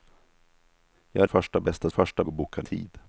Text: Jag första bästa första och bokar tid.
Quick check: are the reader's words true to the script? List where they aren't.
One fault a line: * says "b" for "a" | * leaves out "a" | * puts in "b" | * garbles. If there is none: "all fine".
all fine